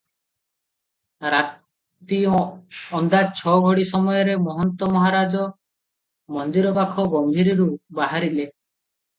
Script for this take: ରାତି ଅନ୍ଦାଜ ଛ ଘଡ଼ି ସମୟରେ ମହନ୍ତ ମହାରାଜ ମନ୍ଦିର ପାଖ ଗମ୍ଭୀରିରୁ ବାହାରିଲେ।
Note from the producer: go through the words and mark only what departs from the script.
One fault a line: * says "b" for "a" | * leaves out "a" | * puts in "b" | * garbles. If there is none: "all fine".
all fine